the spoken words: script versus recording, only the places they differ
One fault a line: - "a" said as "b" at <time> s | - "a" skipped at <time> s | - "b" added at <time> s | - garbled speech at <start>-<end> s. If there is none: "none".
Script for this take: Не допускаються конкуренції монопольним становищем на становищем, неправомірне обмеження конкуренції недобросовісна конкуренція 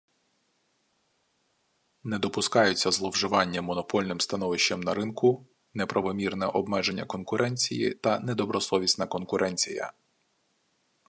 - "конкуренції" said as "зловживання" at 2.9 s
- "становищем" said as "ринку" at 4.9 s
- "та" added at 7.9 s